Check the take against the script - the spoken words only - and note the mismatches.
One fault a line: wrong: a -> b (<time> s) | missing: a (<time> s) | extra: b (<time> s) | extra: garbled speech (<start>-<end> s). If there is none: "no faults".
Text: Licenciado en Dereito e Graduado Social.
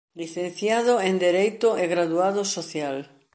no faults